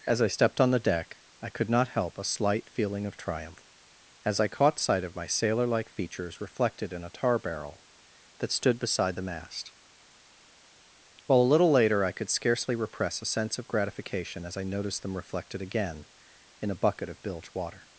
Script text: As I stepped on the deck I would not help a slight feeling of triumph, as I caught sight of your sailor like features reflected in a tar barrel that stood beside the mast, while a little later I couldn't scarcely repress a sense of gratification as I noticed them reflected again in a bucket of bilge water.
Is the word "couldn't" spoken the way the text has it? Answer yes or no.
no